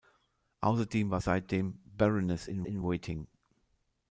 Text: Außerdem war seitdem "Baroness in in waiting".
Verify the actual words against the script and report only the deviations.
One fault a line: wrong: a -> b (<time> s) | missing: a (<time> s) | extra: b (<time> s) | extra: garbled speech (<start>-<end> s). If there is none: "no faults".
no faults